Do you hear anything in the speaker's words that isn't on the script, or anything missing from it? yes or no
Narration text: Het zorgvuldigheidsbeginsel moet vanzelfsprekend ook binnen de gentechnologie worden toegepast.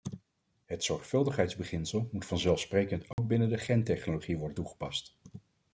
no